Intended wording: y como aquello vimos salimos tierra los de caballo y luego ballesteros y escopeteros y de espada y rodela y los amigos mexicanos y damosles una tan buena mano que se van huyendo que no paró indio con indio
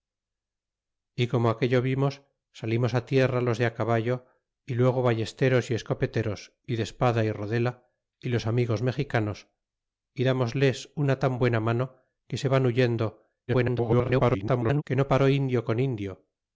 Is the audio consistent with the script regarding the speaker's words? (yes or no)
no